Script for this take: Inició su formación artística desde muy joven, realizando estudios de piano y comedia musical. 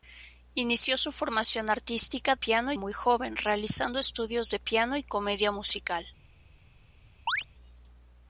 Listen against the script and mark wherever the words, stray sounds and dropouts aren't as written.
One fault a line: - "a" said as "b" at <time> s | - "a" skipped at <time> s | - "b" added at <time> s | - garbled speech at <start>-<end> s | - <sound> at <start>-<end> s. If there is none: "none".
- "desde" said as "piano" at 2.3 s
- chirp at 7.3-7.4 s